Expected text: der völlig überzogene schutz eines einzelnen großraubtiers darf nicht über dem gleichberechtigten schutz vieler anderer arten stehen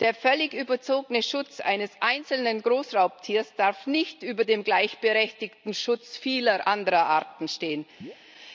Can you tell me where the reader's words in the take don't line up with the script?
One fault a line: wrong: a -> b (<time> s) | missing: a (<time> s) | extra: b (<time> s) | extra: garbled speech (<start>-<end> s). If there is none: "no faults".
no faults